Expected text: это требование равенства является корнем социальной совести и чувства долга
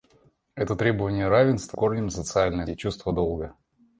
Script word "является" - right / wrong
wrong